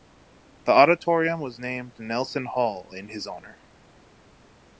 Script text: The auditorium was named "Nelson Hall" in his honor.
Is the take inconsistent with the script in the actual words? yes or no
no